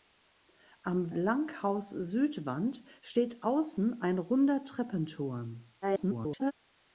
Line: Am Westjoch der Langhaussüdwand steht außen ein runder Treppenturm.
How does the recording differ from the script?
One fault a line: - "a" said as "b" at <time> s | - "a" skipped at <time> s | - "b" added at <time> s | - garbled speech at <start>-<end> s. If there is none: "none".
- "Westjoch der" skipped at 1.1 s
- garbled speech at 5.8-6.5 s